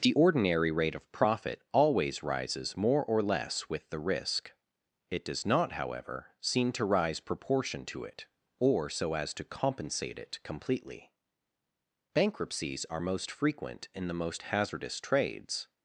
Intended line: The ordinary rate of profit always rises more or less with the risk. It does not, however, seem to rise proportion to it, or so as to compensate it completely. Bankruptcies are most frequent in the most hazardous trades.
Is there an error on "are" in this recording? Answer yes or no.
no